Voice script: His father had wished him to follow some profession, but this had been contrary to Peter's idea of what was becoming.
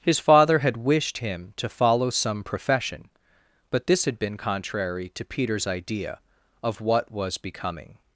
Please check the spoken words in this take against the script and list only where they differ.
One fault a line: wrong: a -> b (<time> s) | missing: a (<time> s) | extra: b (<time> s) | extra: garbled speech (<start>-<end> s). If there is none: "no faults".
no faults